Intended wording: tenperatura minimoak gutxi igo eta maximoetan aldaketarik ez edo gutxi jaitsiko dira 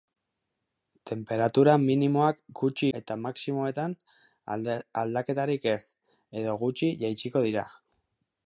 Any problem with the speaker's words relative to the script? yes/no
yes